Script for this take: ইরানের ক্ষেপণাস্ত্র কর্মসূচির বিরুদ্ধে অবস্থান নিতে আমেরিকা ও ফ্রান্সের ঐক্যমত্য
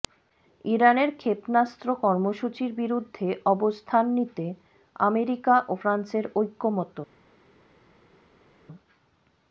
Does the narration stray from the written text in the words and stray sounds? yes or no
no